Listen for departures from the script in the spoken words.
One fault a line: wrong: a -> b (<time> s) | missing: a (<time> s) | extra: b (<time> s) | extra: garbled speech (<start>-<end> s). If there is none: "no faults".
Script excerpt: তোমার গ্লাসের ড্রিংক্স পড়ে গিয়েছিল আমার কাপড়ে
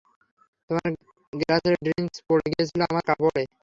no faults